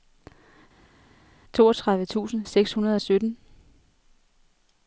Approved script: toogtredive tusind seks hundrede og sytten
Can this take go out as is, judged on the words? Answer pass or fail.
pass